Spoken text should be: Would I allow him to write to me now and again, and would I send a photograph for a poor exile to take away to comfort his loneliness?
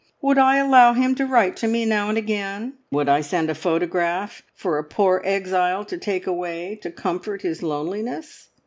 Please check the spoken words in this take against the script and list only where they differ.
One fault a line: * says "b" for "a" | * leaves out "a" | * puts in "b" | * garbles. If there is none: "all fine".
* leaves out "and"